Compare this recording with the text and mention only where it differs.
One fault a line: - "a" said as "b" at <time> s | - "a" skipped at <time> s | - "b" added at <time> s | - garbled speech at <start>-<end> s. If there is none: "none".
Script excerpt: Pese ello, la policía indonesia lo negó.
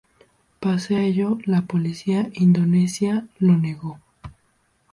none